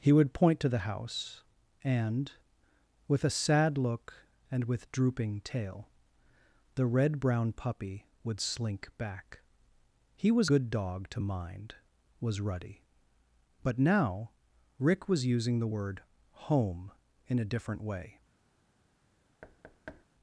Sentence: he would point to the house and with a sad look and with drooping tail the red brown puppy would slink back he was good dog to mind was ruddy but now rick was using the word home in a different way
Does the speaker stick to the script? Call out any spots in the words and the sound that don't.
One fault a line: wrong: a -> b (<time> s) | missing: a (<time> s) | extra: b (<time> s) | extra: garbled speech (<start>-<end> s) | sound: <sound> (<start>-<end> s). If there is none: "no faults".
sound: thud (19.4-20.1 s)